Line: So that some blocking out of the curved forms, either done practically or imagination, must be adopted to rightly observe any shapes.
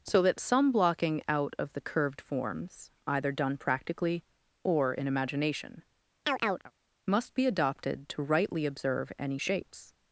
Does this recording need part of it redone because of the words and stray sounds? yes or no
yes